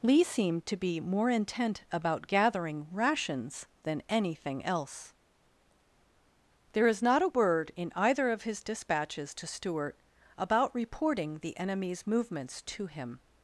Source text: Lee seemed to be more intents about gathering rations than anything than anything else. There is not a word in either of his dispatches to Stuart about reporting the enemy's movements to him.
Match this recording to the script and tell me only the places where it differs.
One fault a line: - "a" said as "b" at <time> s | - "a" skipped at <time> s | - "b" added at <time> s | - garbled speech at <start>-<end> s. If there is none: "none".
- "intents" said as "intent" at 1.3 s
- "than anything" skipped at 4.7 s